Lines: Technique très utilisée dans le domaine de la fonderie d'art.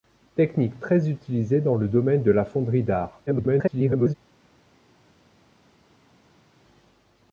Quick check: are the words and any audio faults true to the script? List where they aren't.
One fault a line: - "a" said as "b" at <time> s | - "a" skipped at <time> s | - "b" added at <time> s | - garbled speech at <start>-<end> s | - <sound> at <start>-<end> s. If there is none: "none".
- garbled speech at 3.3-4.1 s